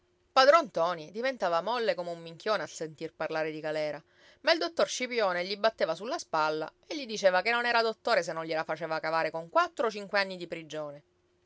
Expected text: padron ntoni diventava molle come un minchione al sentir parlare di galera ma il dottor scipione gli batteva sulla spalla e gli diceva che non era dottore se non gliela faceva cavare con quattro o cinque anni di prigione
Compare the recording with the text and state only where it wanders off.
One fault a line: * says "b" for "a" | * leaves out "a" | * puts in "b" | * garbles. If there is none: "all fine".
all fine